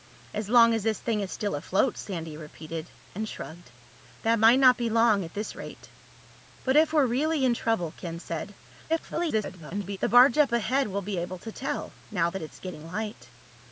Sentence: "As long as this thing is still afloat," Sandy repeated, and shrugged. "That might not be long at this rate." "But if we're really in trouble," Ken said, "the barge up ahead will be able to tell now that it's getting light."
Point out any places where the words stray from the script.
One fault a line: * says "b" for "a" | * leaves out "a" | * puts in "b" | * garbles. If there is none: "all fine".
* garbles